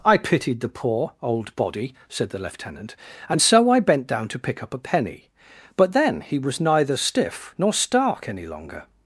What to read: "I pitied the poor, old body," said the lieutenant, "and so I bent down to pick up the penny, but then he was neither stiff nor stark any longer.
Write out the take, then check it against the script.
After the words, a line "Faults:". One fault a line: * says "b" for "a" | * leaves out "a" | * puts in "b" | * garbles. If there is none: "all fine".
"I pitied the poor, old body," said the lieutenant, "and so I bent down to pick up a penny, but then he was neither stiff nor stark any longer.
Faults:
* says "a" for "the"